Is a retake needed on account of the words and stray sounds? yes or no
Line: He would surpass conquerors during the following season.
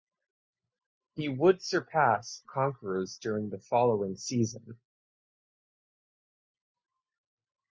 no